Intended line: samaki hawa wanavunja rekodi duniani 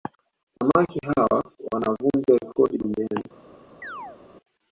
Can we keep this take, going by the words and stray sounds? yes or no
no